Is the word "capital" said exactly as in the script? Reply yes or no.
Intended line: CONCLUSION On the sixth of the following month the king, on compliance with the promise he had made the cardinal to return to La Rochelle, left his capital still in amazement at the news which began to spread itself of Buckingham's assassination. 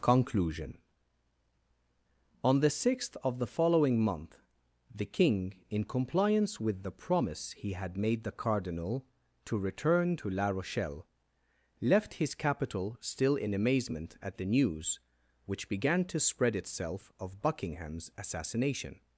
yes